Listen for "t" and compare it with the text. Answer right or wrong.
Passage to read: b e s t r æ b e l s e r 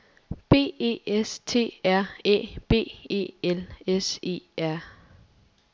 right